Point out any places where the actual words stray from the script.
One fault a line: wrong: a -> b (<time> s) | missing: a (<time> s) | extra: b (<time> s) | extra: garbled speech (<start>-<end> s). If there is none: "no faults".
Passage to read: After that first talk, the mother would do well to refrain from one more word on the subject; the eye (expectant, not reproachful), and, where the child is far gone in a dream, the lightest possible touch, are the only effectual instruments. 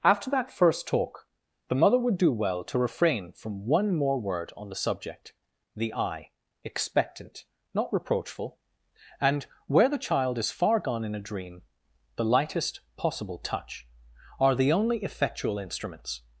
no faults